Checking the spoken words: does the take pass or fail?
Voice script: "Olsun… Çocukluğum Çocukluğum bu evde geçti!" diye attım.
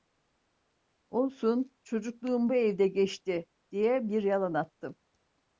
fail